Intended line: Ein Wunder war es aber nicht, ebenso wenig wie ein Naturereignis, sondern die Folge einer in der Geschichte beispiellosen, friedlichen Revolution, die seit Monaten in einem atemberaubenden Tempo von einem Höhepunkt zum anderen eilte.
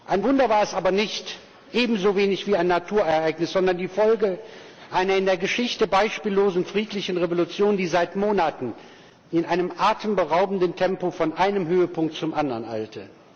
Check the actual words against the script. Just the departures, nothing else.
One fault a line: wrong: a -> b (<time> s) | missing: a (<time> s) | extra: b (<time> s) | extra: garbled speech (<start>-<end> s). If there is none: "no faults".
no faults